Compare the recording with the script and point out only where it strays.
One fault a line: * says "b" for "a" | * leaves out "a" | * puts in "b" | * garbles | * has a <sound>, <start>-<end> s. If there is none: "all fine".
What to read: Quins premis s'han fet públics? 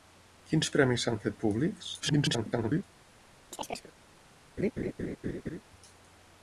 * garbles
* has a chirp, 3.5-3.9 s
* has a laugh, 4.6-5.6 s